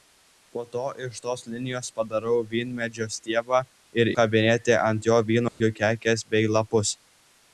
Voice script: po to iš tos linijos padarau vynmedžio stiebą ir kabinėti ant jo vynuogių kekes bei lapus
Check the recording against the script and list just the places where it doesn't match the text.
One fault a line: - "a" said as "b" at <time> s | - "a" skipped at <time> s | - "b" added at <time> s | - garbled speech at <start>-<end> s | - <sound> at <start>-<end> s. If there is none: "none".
- dropout at 5.5-5.6 s